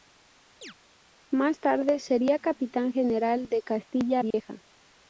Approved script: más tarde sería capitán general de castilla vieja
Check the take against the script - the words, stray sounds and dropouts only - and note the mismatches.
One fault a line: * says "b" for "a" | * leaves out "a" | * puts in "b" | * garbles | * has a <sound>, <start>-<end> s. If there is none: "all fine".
* has a chirp, 0.6-0.7 s
* has a dropout, 4.3-4.3 s